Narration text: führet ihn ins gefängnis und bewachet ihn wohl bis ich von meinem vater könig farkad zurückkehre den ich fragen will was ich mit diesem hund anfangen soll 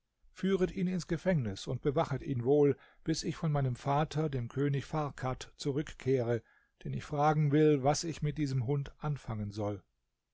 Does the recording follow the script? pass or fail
fail